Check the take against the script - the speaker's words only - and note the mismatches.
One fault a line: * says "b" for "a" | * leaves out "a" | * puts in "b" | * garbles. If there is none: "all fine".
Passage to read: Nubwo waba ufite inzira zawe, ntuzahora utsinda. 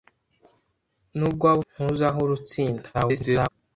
* leaves out "ufite inzira zawe"
* garbles